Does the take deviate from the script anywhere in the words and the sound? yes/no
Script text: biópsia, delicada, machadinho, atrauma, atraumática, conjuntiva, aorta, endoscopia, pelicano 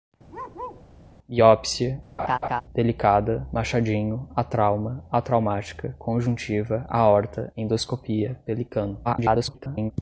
yes